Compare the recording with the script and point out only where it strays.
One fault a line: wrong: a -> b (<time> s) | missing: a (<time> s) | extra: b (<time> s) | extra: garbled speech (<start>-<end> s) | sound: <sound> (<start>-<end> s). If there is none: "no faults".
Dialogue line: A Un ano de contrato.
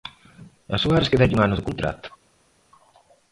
extra: Suárez quédalle (0.8 s)